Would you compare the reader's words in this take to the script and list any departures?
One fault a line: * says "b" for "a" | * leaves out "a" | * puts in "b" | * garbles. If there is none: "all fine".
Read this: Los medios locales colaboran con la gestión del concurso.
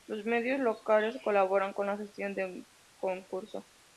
all fine